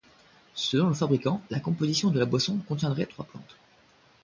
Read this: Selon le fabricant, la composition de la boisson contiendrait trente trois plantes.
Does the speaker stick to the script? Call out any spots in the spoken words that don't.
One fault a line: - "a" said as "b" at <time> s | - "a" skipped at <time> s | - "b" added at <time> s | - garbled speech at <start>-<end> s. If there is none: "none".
- "trente" skipped at 3.1 s